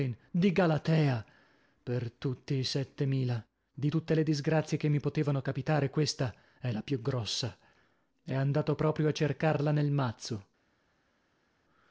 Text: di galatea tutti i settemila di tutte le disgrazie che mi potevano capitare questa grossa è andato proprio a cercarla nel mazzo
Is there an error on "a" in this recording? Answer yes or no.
no